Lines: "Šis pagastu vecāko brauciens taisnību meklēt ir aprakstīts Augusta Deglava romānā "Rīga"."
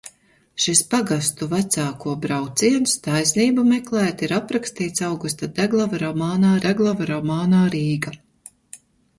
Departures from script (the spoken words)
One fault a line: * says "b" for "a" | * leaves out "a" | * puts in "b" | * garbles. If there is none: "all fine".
* puts in "Deglava romānā"